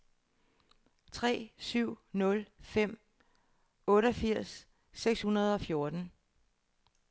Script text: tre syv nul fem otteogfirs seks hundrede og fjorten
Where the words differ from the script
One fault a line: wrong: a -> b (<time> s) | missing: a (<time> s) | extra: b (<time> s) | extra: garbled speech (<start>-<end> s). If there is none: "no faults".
no faults